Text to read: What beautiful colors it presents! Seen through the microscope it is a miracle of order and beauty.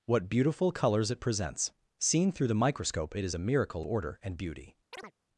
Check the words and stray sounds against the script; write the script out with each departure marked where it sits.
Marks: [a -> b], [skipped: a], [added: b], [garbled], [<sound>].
What beautiful colors it presents! Seen through the microscope it is a miracle [skipped: of] order and beauty. [chirp]